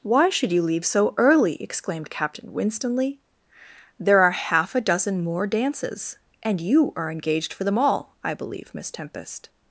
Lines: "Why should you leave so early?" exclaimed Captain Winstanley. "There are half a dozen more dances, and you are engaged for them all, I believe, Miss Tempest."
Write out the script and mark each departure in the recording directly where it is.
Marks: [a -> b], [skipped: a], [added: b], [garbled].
"Why should you leave so early?" exclaimed Captain Winstanley. "There are half a dozen more dances, and you are engaged for them all, I believe, Miss Tempest."